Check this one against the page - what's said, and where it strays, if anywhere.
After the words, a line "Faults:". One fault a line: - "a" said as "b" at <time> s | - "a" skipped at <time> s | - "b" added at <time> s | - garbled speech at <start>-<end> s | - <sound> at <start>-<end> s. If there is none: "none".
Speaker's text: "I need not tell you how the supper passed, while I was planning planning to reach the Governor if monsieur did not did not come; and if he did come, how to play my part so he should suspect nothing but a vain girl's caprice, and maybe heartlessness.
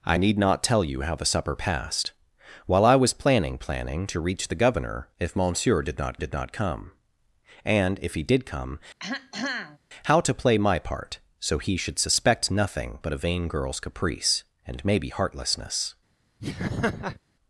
"I need not tell you how the supper passed, while I was planning planning to reach the Governor if monsieur did not did not come; and if he did come, how to play my part so he should suspect nothing but a vain girl's caprice, and maybe heartlessness.
Faults:
- throat clearing at 9.0-9.8 s
- laugh at 16.4-17.2 s